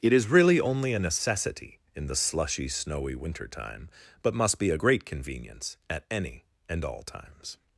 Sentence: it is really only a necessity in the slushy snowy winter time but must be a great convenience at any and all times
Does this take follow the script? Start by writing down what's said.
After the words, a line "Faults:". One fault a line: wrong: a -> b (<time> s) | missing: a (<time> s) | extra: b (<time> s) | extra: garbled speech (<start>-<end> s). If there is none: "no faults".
it is really only a necessity in the slushy snowy winter time but must be a great convenience at any and all times
Faults:
no faults